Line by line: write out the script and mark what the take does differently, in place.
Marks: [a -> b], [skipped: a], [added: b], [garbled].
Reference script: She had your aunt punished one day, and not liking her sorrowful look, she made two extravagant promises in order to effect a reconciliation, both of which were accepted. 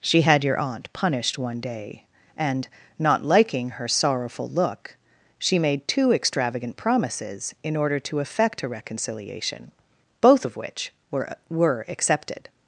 She had your aunt punished one day, and not liking her sorrowful look, she made two extravagant promises in order to effect a reconciliation, both of which were [added: were] accepted.